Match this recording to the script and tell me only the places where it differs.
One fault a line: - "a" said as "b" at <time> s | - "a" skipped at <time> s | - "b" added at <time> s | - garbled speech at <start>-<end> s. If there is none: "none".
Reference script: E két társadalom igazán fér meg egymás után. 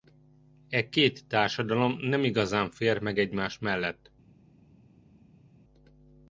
- "nem" added at 2.0 s
- "után" said as "mellett" at 3.6 s